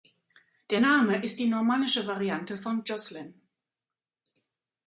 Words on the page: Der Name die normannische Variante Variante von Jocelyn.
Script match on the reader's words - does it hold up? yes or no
no